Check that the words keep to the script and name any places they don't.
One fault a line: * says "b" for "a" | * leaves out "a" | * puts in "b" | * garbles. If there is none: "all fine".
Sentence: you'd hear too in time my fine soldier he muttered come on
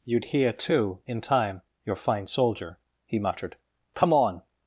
* says "your" for "my"